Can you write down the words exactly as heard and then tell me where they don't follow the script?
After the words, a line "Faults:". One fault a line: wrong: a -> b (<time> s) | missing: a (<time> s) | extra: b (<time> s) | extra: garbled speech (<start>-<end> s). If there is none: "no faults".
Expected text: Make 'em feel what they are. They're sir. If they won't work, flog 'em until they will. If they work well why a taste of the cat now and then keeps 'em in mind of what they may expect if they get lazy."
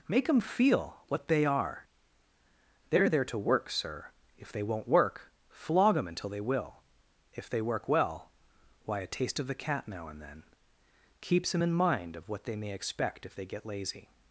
Make 'em feel what they are. They're there to work, sir. If they won't work, flog 'em until they will. If they work well why a taste of the cat now and then keeps 'em in mind of what they may expect if they get lazy."
Faults:
extra: there to work (3.1 s)